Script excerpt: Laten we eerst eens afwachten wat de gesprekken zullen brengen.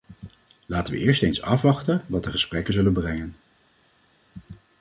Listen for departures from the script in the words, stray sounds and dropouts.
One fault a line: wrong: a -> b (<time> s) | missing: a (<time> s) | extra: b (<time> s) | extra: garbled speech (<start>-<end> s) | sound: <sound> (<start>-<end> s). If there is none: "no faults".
no faults